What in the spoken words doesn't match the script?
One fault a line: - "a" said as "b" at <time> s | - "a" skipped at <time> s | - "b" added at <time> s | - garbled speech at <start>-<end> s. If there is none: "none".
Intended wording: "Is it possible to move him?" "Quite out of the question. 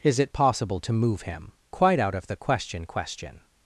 - "question" added at 2.9 s